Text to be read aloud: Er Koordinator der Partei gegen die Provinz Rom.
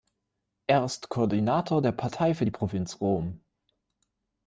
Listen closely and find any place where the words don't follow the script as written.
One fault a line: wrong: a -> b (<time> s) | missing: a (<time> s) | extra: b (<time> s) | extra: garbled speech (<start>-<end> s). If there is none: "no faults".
extra: ist (0.8 s)
wrong: gegen -> für (2.3 s)